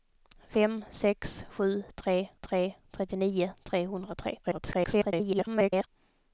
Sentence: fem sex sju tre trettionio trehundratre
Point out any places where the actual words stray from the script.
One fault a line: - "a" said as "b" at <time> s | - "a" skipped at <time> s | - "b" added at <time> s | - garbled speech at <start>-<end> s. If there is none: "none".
- "tre" added at 2.4 s
- garbled speech at 4.4-5.9 s